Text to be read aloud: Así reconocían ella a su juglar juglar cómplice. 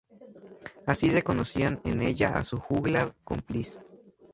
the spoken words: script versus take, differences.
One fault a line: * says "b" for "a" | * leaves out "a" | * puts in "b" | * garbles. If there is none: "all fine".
* puts in "en"
* leaves out "juglar"